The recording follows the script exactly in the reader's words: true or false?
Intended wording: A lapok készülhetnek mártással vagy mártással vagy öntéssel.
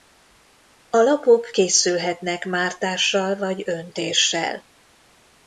false